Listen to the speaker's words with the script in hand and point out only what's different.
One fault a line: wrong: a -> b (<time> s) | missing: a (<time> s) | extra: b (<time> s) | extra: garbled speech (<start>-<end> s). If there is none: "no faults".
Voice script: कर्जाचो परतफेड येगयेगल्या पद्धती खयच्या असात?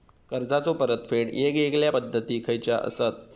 no faults